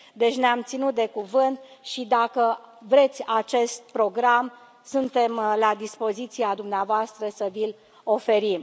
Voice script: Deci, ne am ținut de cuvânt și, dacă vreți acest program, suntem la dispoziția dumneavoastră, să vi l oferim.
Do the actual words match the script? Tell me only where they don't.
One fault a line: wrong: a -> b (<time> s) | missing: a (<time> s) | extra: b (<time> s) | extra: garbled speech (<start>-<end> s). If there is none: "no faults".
no faults